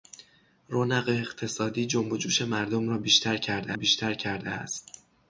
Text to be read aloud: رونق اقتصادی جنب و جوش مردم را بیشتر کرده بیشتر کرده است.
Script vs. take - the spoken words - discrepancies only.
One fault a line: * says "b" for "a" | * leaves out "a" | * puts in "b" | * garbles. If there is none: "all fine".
all fine